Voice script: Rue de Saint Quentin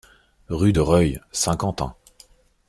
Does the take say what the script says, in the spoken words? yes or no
no